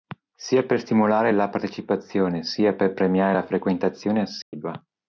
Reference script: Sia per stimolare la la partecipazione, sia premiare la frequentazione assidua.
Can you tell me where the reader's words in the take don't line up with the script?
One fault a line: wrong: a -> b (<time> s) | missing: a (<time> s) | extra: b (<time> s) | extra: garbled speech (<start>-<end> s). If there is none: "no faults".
missing: la (1.5 s)
extra: per (2.7 s)